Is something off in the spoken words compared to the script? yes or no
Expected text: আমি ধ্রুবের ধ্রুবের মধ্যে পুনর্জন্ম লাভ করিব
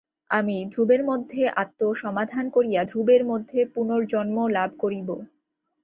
yes